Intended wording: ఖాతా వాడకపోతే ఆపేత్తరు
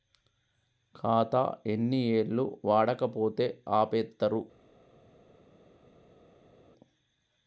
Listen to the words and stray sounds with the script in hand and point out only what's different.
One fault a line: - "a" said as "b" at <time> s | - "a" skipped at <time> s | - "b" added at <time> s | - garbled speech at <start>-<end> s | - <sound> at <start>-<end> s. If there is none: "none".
- "ఎన్ని ఏళ్లు" added at 1.7 s